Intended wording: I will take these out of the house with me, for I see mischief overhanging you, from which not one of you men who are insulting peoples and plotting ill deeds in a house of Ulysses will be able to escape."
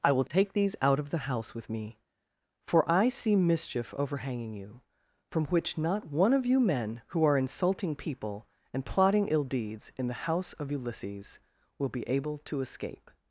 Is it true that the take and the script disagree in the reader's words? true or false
true